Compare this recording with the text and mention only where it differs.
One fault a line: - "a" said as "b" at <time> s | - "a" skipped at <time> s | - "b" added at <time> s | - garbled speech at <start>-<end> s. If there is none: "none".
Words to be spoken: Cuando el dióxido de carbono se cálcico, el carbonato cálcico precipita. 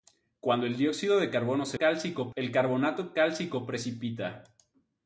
none